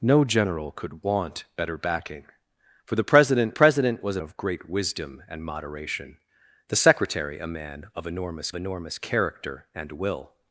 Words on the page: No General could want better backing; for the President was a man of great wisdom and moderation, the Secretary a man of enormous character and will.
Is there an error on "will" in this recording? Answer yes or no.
no